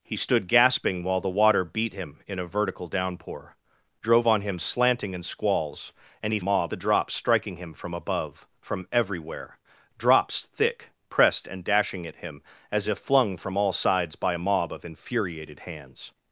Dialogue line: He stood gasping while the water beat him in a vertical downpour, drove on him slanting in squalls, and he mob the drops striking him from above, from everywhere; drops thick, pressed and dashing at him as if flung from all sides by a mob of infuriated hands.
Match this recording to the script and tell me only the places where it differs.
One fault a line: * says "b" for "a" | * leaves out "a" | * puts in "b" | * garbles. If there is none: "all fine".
all fine